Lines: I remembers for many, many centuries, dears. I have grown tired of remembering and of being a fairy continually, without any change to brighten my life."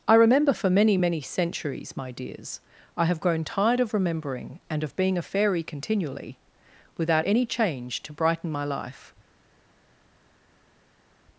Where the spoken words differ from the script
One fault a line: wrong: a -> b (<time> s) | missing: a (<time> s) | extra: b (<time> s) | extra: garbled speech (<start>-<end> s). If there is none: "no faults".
wrong: remembers -> remember (0.1 s)
extra: my (2.0 s)